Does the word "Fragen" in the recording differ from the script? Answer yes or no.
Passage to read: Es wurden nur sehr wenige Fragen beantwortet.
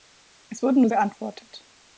yes